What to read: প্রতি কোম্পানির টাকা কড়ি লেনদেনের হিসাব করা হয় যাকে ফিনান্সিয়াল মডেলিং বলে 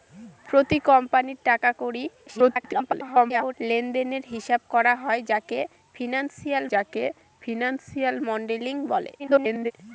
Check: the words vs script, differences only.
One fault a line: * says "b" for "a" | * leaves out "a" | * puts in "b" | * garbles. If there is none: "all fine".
* garbles
* puts in "যাকে ফিনান্সিয়াল"
* garbles